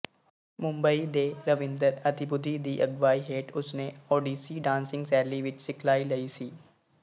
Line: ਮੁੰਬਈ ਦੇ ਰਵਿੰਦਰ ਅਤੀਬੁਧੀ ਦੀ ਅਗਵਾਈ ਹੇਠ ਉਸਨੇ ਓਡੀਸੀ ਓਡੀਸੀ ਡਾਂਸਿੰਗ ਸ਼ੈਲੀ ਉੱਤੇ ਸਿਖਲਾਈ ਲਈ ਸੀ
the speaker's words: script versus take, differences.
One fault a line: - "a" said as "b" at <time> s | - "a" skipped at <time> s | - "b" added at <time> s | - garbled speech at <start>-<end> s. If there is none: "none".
- "ਓਡੀਸੀ" skipped at 4.6 s
- "ਉੱਤੇ" said as "ਵਿੱਚ" at 5.4 s